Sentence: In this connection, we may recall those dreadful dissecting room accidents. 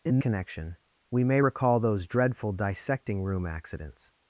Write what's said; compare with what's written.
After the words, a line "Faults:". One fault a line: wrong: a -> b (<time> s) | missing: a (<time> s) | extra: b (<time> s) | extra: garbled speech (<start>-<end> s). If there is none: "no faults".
In connection, we may recall those dreadful dissecting room accidents.
Faults:
missing: this (0.2 s)